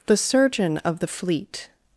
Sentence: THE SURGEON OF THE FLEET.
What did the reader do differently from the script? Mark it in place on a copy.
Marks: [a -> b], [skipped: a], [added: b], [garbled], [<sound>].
THE SURGEON OF THE FLEET.